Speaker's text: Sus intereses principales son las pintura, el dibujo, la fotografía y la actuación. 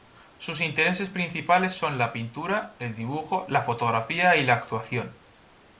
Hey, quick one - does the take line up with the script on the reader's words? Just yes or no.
no